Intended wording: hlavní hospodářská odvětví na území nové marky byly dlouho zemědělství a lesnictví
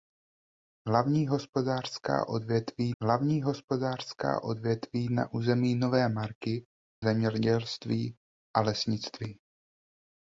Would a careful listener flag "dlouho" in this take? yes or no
yes